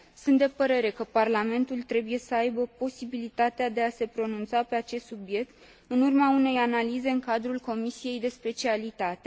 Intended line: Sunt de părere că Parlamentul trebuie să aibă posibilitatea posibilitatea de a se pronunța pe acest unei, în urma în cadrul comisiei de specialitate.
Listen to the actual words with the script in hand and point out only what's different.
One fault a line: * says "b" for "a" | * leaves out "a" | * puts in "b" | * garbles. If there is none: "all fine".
* leaves out "posibilitatea"
* says "subiect" for "unei"
* puts in "unei analize"